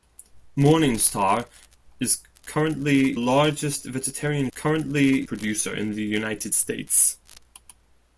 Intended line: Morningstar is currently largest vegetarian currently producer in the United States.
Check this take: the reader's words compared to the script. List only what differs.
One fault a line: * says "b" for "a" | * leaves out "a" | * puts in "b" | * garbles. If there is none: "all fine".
all fine